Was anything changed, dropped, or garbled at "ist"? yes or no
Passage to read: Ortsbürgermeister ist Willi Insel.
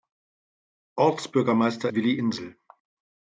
yes